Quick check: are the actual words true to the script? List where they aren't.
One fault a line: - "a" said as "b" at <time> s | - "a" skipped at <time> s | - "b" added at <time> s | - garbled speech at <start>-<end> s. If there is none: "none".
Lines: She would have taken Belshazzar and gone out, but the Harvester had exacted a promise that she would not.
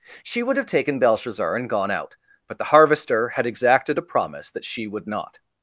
none